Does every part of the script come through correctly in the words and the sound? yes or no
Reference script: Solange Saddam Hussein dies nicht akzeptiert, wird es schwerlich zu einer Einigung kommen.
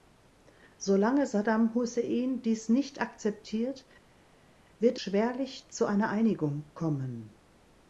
no